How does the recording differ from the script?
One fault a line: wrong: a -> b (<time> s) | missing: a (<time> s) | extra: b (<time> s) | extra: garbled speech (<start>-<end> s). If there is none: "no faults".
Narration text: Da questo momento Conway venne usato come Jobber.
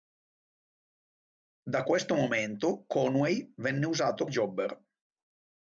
missing: come (4.2 s)